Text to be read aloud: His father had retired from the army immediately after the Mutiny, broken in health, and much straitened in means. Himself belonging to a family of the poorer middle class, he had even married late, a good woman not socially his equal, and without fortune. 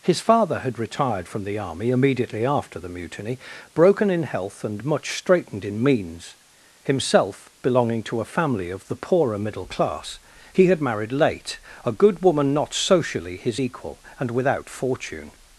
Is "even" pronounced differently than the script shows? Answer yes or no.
yes